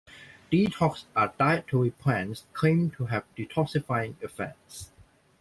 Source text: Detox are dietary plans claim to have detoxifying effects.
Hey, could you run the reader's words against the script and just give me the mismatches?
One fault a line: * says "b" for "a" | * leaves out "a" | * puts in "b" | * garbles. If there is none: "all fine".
all fine